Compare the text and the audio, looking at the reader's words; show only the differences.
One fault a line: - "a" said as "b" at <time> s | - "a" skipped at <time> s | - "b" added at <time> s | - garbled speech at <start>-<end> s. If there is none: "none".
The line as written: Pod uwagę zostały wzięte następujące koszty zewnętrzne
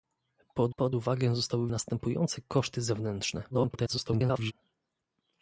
- "pod" added at 0.8 s
- "wzięte" skipped at 1.7 s
- garbled speech at 3.5-4.5 s